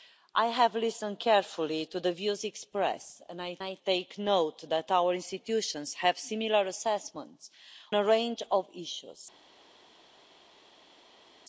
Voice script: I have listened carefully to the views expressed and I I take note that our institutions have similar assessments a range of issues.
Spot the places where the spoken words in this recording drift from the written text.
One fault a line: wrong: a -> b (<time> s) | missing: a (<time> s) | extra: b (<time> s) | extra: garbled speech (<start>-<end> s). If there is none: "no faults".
no faults